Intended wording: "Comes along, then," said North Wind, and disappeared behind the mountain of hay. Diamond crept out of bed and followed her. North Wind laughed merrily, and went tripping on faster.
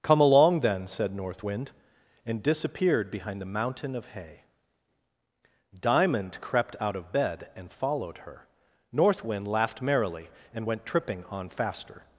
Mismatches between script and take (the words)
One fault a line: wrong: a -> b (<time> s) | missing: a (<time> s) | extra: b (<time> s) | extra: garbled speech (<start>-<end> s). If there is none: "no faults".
wrong: Comes -> Come (0.0 s)